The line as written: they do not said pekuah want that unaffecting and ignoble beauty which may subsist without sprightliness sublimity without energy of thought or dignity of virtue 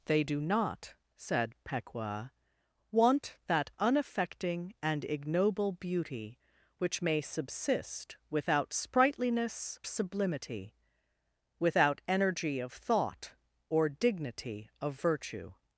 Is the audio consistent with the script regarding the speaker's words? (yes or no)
yes